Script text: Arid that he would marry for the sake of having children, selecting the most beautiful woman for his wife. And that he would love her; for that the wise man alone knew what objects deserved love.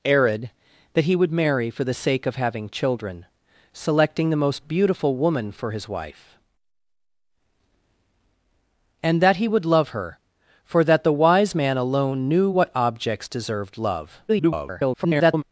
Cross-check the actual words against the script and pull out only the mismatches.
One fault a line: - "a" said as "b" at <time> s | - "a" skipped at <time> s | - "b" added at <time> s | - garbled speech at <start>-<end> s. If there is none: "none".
- garbled speech at 14.3-15.4 s